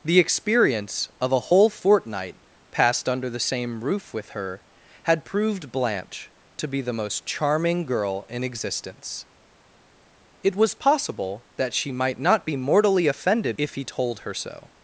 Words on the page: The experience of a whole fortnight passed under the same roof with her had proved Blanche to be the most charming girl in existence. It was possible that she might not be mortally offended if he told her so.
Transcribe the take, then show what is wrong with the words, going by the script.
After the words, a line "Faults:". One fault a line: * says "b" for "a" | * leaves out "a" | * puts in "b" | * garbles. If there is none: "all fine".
The experience of a whole fortnight passed under the same roof with her had proved Blanche to be the most charming girl in existence. It was possible that she might not be mortally offended if he told her so.
Faults:
all fine